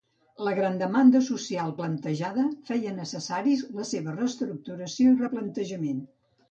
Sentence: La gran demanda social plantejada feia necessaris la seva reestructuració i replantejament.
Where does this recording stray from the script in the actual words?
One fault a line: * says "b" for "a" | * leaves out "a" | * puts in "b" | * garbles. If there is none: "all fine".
all fine